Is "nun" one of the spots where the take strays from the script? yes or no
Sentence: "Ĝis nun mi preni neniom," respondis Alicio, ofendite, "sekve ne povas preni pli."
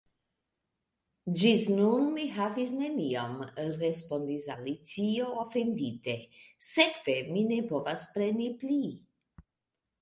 no